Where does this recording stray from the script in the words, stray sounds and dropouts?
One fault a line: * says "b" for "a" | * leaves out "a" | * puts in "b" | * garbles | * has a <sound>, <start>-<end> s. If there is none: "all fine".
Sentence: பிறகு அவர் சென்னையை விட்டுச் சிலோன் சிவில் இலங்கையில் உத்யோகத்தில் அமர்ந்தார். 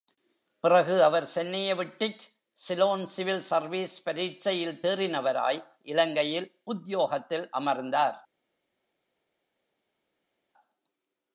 * puts in "சர்வீஸ் பரீட்சையில் தேறினவராய்"